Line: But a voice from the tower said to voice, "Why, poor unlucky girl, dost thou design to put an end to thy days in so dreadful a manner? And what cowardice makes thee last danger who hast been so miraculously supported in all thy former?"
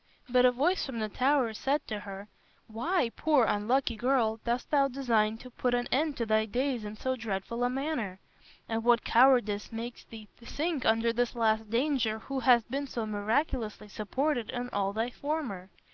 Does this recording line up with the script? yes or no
no